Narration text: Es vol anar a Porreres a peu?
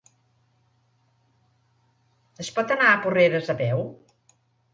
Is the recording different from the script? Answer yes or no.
yes